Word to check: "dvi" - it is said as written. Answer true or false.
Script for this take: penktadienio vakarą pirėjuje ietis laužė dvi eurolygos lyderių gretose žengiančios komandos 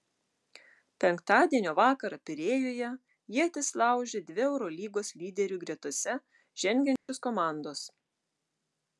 true